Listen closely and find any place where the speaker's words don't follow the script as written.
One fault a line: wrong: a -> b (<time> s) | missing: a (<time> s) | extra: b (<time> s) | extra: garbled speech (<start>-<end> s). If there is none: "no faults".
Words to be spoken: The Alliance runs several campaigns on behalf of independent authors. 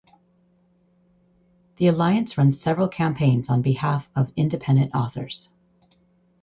no faults